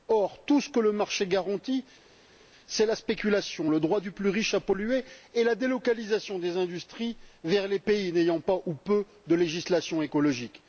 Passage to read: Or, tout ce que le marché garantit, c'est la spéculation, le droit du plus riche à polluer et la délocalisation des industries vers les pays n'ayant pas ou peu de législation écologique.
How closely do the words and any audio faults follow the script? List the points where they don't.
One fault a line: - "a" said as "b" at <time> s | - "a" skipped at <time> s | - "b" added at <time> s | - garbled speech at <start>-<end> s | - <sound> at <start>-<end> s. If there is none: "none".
none